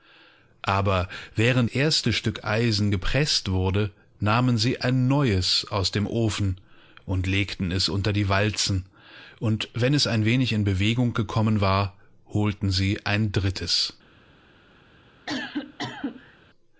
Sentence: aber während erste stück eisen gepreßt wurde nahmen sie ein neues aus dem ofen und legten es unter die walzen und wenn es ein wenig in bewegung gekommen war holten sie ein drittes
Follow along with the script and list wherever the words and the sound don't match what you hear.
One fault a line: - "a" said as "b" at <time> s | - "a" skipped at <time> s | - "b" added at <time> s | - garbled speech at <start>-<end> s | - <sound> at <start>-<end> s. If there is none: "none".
- cough at 15.3-16.4 s